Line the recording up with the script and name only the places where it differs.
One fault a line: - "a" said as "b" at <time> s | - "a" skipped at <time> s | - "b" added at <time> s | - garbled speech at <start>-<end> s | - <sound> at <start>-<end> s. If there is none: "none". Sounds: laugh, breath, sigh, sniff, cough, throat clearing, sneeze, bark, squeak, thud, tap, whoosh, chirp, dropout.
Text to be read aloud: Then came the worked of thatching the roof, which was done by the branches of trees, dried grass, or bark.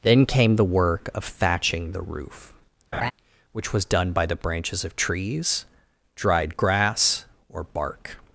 - "worked" said as "work" at 0.7 s
- laugh at 2.9-3.1 s